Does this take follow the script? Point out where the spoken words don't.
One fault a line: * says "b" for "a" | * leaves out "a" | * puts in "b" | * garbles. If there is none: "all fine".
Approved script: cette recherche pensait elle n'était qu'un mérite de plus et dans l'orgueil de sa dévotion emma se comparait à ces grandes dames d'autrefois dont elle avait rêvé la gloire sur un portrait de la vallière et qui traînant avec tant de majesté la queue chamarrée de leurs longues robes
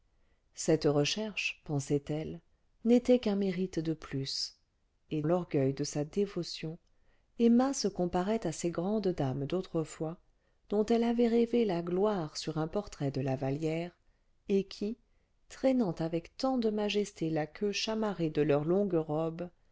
* leaves out "dans"